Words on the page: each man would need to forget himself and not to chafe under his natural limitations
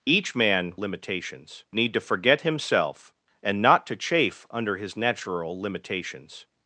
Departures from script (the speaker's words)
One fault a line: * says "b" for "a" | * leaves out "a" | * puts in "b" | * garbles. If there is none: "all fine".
* says "limitations" for "would"